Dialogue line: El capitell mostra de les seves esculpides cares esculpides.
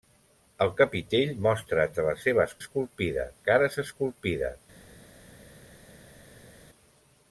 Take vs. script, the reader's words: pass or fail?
pass